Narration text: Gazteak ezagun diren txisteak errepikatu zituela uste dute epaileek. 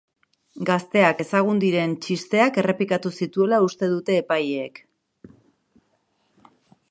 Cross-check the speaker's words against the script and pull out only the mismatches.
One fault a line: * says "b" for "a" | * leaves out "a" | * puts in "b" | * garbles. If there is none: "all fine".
all fine